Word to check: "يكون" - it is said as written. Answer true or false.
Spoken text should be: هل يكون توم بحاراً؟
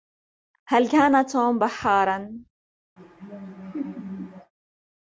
false